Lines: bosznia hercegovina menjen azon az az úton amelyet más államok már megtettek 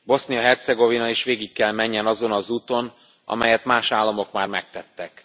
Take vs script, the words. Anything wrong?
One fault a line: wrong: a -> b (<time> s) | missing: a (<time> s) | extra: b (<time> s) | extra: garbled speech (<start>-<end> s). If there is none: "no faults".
extra: is végig kell (1.1 s)
missing: az (2.5 s)